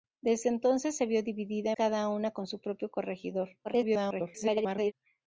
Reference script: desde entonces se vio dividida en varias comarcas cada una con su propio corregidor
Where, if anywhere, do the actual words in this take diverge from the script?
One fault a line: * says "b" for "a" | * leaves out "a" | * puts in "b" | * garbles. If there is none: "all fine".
* leaves out "en varias comarcas"
* garbles